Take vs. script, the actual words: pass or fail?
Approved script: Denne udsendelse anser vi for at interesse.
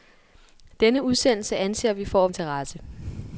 pass